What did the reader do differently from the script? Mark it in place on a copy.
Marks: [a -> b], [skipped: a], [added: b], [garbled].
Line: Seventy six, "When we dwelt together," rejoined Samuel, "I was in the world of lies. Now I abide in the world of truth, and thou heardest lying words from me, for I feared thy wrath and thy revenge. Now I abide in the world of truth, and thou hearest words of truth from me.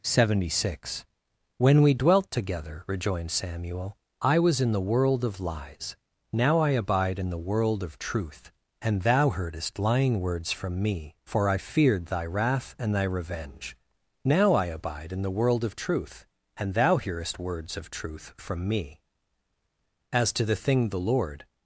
Seventy six, "When we dwelt together," rejoined Samuel, "I was in the world of lies. Now I abide in the world of truth, and thou heardest lying words from me, for I feared thy wrath and thy revenge. Now I abide in the world of truth, and thou hearest words of truth from me. [added: As to the thing the Lord]